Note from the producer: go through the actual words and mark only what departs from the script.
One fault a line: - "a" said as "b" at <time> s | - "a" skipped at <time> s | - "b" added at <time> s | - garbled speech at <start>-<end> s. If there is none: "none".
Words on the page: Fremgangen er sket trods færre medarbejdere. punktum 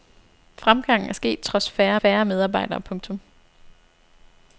- "færre" added at 2.0 s